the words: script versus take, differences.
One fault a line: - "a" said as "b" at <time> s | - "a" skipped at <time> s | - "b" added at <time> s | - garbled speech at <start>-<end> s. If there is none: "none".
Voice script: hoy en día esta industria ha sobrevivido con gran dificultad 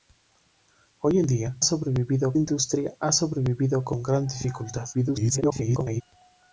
- "esta" said as "sobrevivido" at 1.6 s
- garbled speech at 4.9-6.0 s